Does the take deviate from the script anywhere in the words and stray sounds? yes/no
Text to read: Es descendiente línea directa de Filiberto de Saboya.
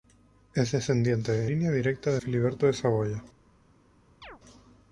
yes